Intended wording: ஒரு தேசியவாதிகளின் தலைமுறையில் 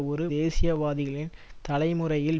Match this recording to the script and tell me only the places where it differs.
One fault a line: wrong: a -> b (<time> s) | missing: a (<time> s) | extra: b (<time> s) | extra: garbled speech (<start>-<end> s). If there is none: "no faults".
no faults